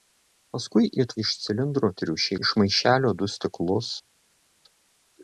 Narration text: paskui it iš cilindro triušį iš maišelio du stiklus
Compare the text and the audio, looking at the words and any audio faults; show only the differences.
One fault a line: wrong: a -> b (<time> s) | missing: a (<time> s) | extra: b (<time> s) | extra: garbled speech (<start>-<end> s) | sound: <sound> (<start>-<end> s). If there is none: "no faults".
no faults